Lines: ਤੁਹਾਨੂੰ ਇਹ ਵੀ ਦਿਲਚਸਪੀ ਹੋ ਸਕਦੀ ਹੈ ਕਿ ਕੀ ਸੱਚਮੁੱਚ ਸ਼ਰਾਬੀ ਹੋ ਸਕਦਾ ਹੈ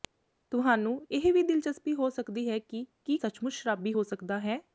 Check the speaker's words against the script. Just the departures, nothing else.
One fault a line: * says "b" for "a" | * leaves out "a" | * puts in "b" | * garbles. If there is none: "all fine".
all fine